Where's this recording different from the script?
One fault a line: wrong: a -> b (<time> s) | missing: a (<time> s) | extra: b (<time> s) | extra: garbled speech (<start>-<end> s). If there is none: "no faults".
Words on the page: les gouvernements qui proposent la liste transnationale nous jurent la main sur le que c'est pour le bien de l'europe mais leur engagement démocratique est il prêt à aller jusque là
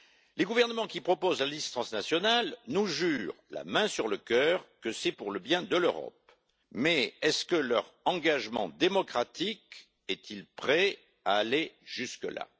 extra: cœur (4.2 s)